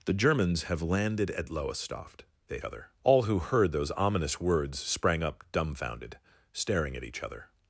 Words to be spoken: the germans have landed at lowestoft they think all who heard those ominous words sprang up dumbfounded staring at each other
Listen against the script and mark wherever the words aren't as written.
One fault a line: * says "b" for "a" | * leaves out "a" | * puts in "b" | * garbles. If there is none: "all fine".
* says "other" for "think"